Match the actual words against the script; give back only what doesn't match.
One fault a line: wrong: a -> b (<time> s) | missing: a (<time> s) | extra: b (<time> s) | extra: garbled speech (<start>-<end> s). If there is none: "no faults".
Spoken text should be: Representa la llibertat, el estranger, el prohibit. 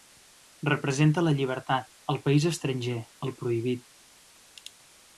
extra: país (2.2 s)